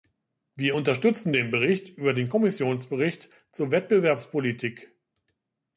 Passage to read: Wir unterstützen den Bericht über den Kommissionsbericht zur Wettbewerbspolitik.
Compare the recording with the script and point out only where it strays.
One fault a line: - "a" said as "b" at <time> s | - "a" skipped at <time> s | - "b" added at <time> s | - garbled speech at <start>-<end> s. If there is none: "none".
none